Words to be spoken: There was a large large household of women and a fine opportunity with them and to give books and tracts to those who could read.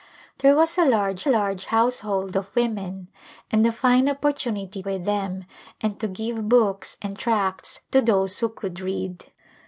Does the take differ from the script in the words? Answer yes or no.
no